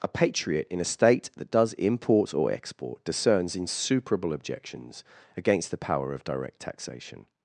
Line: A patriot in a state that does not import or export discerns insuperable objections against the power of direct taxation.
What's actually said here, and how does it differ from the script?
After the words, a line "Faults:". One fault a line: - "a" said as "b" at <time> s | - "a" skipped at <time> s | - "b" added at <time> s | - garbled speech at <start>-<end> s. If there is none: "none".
A patriot in a state that does import or export discerns insuperable objections against the power of direct taxation.
Faults:
- "not" skipped at 1.7 s